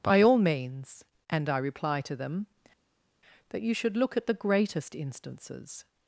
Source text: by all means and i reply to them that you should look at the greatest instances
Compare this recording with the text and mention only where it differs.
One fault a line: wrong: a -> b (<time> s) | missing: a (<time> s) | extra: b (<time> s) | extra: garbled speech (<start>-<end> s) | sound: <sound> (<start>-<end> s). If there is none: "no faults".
no faults